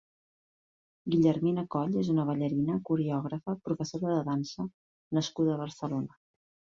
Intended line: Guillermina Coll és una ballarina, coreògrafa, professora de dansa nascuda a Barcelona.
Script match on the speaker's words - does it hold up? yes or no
yes